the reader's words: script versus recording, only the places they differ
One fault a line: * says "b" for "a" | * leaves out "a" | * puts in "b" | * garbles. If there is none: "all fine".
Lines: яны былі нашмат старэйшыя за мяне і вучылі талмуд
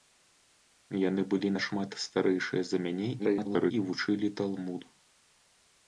* garbles